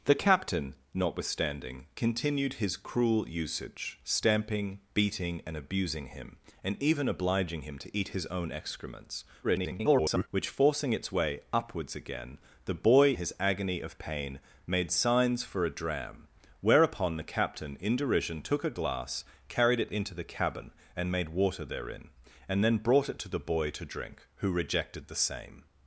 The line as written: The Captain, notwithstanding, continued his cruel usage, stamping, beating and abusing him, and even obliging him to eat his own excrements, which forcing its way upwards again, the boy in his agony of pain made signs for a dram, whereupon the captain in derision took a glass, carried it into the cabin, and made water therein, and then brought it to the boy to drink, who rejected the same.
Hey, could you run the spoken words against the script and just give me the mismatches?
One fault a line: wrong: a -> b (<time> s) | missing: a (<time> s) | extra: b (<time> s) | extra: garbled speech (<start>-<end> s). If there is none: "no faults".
extra: garbled speech (9.4-10.3 s)
missing: in (13.1 s)